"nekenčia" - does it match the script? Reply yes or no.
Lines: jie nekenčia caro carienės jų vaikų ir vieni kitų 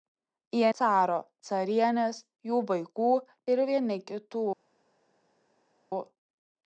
no